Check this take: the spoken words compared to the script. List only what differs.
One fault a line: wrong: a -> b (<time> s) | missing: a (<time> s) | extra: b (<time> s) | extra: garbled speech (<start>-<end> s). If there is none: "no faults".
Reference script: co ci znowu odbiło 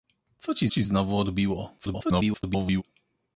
extra: ci (0.7 s)
extra: garbled speech (1.8-2.8 s)